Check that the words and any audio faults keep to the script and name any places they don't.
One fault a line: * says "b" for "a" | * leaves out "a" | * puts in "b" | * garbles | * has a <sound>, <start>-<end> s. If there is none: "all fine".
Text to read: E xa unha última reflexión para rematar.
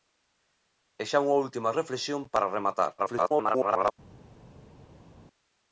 * garbles